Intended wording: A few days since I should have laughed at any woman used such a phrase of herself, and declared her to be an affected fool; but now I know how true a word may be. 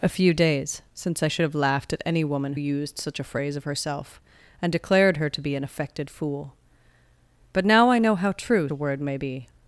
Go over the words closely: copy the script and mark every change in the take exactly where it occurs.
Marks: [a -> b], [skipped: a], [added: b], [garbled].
A few days since I should have laughed at any woman used such a phrase of herself, and declared her to be an affected fool; but now I know how true a word may be.